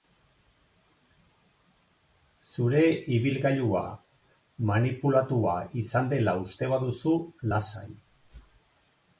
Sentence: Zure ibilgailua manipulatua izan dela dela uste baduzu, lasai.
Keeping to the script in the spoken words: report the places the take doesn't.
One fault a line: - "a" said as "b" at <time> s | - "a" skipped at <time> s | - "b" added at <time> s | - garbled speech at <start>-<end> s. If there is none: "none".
- "dela" skipped at 6.4 s